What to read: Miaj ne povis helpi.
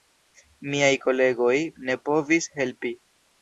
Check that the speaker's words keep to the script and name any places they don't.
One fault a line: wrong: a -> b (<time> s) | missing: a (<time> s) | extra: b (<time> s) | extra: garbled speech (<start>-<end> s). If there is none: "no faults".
extra: kolegoj (1.0 s)